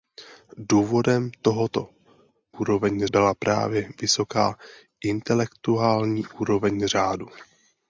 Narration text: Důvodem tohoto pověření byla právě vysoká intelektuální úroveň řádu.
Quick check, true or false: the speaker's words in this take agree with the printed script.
false